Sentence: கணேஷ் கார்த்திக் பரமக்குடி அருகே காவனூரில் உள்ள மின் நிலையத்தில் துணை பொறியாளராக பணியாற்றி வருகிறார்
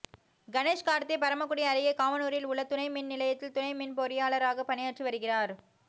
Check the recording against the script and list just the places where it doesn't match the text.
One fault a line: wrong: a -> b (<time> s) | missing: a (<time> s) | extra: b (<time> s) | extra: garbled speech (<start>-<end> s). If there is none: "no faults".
extra: துணை (2.6 s)
extra: மின் (3.7 s)